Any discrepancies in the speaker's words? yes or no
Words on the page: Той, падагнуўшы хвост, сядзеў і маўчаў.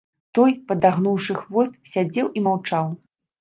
no